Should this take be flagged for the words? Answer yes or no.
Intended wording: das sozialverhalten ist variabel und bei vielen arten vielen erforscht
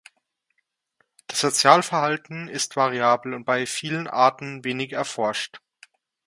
yes